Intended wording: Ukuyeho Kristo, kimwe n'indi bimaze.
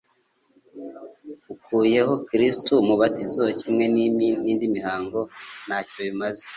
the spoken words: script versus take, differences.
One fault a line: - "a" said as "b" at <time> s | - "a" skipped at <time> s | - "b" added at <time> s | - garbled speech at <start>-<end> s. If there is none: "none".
- "umubatizo" added at 2.8 s
- "mihango ntacyo" added at 4.8 s